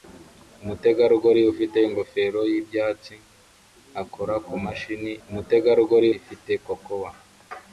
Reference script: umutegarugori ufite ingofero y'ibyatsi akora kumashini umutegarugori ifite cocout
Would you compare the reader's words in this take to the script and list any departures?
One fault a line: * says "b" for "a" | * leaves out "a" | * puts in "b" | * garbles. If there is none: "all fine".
all fine